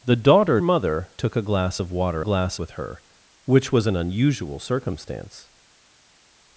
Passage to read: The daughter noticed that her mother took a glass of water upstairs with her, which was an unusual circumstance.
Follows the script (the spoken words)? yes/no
no